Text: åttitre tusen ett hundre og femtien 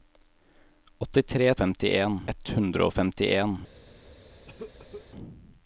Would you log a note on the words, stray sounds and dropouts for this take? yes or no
yes